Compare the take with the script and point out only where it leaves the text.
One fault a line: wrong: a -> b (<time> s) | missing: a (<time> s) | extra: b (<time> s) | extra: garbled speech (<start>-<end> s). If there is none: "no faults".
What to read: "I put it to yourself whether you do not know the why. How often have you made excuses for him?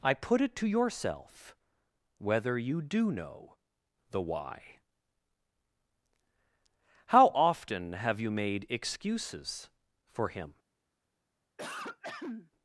missing: not (3.1 s)